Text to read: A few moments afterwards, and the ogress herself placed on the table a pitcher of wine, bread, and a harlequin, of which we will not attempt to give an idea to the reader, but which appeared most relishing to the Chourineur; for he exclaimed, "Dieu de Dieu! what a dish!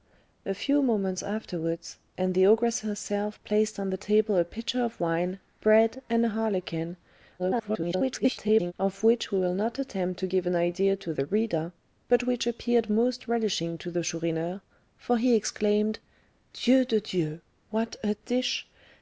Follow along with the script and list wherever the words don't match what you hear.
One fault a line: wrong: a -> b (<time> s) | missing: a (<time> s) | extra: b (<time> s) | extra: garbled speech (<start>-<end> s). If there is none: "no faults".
extra: garbled speech (7.4-8.7 s)